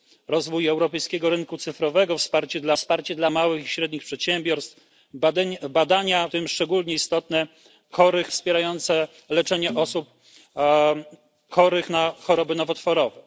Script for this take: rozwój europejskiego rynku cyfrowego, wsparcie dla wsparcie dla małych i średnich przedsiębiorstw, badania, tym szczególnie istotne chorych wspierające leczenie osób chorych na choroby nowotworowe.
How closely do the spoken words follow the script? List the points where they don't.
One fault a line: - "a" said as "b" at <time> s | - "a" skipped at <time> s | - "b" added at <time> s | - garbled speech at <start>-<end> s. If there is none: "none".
none